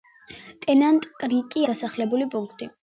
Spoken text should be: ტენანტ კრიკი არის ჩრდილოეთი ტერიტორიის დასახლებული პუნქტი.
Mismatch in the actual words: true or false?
true